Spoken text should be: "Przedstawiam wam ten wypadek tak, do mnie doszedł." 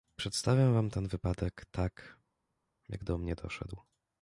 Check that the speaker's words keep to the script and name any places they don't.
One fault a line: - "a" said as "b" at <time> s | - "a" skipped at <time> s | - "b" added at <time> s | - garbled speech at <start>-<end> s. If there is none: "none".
- "jak" added at 2.9 s